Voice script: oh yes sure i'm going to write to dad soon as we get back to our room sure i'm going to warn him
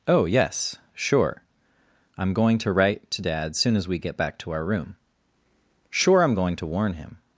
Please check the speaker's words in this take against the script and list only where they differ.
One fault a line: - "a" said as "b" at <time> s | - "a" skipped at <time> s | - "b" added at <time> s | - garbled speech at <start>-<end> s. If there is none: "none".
none